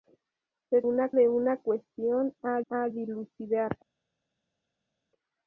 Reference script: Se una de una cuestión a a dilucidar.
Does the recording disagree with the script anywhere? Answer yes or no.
no